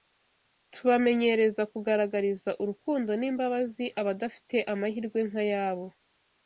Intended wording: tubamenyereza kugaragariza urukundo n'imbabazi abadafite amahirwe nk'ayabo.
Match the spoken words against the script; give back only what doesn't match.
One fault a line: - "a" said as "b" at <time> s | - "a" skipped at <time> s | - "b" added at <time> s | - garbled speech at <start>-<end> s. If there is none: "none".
none